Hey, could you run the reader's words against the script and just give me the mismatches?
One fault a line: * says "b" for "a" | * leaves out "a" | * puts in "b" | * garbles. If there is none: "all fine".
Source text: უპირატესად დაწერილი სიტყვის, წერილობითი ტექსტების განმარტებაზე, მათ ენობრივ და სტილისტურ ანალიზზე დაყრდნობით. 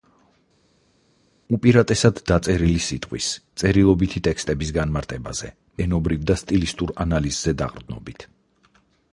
* leaves out "მათ"